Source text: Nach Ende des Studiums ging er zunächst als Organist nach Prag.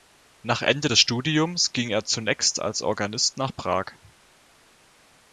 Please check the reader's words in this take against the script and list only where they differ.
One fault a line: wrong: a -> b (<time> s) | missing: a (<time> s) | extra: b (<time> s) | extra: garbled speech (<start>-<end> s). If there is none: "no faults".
no faults